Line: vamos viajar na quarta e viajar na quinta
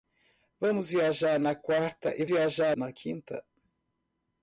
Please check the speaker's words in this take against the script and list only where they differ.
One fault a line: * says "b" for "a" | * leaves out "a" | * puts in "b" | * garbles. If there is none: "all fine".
all fine